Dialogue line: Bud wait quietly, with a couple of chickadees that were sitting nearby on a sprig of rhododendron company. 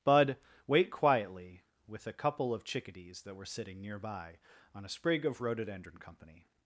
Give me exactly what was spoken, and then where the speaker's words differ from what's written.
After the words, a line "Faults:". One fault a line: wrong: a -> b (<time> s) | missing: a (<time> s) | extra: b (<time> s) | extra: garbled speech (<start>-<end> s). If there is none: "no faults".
Bud wait quietly, with a couple of chickadees that were sitting nearby on a sprig of rhododendron company.
Faults:
no faults